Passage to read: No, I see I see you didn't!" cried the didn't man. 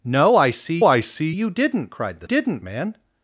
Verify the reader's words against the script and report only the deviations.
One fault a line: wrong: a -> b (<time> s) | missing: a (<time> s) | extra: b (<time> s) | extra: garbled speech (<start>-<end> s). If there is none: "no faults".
no faults